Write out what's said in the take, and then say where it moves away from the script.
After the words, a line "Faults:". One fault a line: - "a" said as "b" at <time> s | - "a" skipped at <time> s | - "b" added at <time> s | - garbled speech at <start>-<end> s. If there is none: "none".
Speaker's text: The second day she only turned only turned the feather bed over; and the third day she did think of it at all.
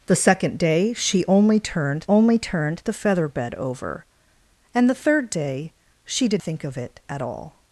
The second day she only turned only turned the feather bed over; and the third day she did think of it at all.
Faults:
none